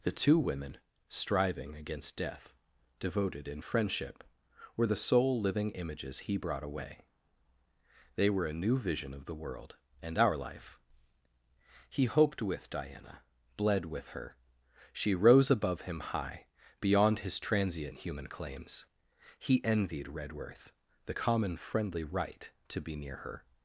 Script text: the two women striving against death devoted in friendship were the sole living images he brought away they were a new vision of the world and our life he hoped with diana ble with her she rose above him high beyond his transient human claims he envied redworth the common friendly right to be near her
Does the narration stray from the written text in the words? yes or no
yes